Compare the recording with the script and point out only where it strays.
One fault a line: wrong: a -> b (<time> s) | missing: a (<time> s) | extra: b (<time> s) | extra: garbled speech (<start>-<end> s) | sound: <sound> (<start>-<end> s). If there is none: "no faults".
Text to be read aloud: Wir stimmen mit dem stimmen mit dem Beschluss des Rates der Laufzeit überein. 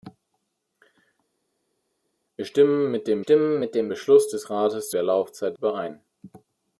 no faults